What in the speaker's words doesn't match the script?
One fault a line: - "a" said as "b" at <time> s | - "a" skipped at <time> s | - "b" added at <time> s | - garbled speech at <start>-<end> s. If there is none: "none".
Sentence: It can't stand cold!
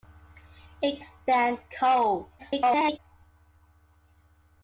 - "can't" skipped at 1.0 s
- garbled speech at 2.4-3.0 s